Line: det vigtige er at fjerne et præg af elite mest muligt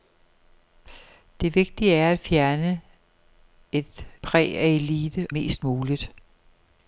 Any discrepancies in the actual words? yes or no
no